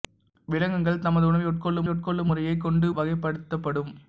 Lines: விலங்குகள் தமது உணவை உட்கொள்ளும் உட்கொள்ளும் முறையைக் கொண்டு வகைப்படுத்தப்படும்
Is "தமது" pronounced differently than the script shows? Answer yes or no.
no